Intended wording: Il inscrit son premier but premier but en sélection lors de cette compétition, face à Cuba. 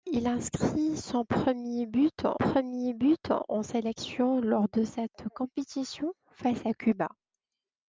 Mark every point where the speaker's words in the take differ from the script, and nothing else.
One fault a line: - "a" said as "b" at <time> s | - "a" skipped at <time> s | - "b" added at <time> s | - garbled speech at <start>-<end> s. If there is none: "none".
none